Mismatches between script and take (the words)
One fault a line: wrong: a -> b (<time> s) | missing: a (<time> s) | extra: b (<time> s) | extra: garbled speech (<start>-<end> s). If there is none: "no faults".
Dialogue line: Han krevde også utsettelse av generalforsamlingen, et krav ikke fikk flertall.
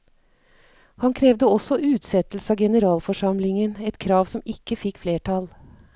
extra: som (4.3 s)